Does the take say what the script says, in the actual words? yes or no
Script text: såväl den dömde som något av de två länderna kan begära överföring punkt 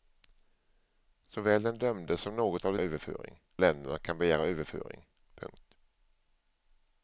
no